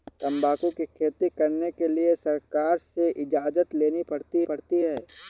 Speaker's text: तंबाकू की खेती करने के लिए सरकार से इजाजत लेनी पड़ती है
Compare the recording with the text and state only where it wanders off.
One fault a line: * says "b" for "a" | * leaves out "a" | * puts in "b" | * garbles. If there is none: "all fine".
* puts in "पड़ती"